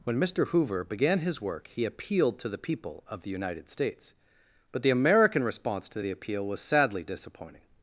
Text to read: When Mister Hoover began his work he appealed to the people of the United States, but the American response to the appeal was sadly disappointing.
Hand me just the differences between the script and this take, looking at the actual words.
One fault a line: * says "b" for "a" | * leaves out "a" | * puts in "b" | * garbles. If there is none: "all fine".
all fine